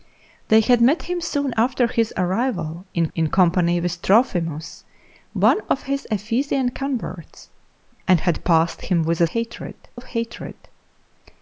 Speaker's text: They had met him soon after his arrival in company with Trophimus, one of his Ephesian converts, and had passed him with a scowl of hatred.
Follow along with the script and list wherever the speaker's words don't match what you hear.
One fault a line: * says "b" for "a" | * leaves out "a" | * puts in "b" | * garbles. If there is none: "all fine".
* puts in "in"
* says "hatred" for "scowl"